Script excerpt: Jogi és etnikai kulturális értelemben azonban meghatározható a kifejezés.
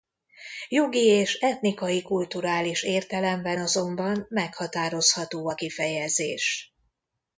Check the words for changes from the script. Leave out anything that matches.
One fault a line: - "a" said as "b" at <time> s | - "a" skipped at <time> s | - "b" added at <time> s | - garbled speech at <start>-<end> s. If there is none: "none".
none